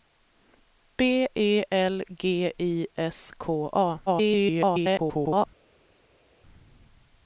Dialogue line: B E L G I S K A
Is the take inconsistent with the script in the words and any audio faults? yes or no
yes